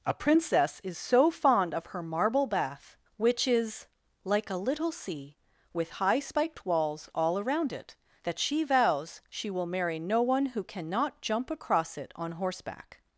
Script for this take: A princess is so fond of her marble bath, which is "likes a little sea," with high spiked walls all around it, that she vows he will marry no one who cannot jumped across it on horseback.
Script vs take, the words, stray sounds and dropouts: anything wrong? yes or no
yes